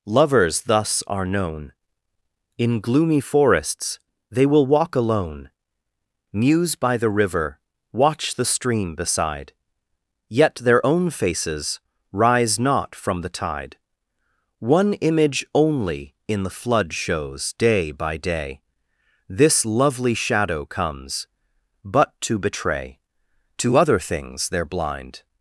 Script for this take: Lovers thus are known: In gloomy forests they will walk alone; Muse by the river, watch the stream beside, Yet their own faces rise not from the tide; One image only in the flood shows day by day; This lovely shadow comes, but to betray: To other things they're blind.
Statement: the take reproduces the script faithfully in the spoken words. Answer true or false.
true